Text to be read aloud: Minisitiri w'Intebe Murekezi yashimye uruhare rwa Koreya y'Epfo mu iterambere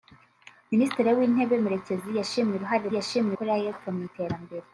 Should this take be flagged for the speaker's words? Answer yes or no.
yes